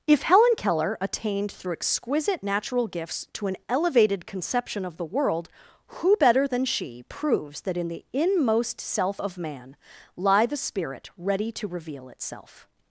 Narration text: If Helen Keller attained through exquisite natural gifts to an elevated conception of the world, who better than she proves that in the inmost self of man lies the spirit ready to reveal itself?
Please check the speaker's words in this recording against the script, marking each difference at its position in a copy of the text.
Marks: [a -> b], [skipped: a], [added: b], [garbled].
If Helen Keller attained through exquisite natural gifts to an elevated conception of the world, who better than she proves that in the inmost self of man [lies -> lie] the spirit ready to reveal itself?